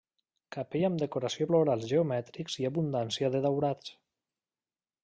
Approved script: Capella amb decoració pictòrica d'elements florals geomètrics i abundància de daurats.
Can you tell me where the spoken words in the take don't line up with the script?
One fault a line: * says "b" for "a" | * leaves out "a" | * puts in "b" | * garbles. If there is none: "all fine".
* leaves out "pictòrica d'elements"